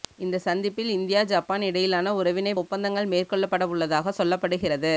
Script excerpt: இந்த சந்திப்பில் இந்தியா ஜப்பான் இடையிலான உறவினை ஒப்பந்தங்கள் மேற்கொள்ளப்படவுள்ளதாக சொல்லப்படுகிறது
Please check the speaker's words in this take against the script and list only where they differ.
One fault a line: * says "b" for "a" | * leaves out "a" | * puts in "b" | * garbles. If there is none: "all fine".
all fine